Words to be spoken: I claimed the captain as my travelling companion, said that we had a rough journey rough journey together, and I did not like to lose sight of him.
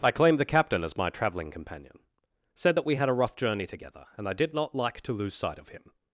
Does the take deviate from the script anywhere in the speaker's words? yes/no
yes